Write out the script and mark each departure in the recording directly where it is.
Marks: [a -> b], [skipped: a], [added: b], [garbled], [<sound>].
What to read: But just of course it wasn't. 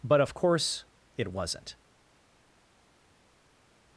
But [skipped: just] of course it wasn't.